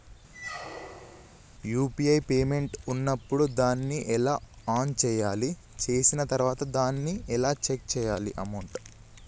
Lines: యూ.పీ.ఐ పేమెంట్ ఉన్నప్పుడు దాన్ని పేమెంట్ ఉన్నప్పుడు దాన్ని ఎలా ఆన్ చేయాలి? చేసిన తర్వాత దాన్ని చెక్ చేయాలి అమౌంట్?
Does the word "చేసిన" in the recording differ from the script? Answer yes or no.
no